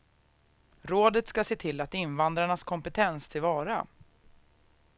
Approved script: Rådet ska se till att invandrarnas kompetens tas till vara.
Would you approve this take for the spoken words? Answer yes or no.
no